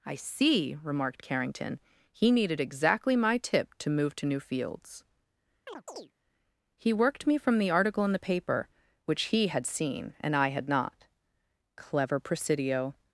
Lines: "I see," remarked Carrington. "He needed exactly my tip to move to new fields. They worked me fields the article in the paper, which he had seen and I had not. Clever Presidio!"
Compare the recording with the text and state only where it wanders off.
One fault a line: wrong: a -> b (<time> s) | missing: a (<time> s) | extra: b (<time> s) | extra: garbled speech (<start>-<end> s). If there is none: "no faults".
wrong: They -> He (6.8 s)
wrong: fields -> from (7.4 s)